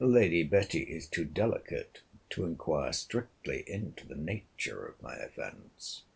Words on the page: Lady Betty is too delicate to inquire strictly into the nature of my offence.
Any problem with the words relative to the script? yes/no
no